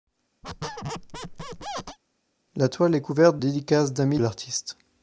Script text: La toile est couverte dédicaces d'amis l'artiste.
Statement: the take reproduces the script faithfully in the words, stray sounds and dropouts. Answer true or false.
false